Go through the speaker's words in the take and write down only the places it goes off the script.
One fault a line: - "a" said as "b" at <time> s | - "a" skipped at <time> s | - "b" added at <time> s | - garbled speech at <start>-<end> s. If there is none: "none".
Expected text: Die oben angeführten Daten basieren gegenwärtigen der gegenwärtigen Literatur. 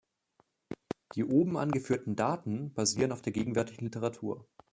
- "gegenwärtigen" said as "auf" at 3.1 s